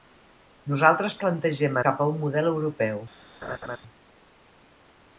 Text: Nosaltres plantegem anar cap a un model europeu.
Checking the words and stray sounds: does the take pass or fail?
fail